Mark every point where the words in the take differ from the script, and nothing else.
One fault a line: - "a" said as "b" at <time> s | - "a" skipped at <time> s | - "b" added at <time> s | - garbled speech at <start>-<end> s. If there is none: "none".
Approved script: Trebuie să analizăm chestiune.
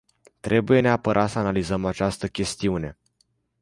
- "neapărat" added at 0.8 s
- "această" added at 1.9 s